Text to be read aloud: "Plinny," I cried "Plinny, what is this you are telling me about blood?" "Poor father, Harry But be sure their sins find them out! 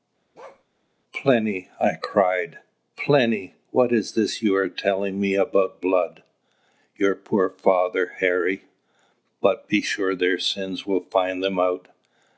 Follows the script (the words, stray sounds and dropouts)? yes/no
no